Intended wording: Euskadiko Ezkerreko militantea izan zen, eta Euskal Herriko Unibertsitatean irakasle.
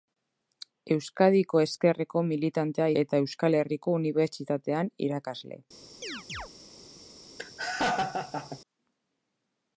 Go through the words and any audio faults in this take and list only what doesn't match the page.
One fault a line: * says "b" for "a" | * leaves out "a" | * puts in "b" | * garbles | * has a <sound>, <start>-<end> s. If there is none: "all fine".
* leaves out "izan zen"
* has a chirp, 6.0-6.5 s
* has a laugh, 7.4-8.6 s